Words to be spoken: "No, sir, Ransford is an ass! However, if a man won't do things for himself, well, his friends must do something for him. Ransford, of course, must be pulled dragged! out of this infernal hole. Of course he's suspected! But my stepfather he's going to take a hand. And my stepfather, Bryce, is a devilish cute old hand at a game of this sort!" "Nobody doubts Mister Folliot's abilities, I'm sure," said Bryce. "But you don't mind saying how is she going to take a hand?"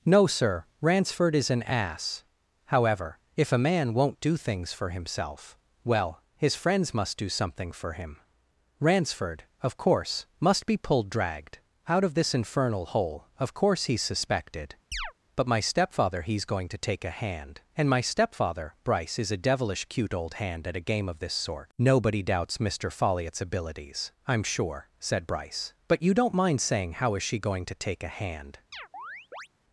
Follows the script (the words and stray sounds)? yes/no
no